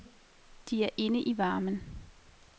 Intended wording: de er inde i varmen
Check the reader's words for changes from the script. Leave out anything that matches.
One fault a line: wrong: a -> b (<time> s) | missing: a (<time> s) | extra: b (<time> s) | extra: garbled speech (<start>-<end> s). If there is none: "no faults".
no faults